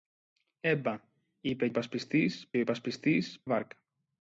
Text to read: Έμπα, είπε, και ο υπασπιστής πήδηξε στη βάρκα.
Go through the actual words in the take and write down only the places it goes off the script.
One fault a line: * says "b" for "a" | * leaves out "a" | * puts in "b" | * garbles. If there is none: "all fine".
* says "υπασπιστής" for "και"
* leaves out "πήδηξε στη"